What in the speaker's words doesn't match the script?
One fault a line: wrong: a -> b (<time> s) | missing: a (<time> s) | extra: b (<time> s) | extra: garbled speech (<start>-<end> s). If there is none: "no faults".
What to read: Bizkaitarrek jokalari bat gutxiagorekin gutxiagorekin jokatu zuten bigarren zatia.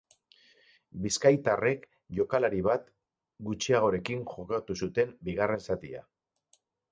missing: gutxiagorekin (4.2 s)